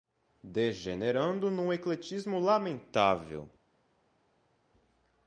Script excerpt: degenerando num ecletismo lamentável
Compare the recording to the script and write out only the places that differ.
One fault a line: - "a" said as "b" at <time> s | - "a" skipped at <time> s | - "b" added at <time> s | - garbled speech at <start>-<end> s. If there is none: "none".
none